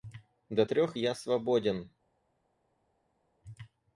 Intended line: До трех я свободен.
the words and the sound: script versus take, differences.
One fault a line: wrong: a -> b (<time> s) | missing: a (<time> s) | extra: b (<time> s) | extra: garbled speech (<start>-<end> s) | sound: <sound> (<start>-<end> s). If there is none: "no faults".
no faults